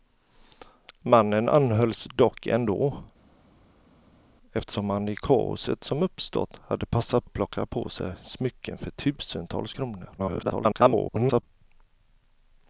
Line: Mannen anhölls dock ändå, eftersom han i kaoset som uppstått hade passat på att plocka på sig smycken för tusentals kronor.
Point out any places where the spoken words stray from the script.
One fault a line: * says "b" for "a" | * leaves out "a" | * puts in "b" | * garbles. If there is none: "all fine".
* leaves out "på"
* garbles